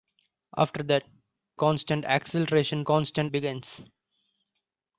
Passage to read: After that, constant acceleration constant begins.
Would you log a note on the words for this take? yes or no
no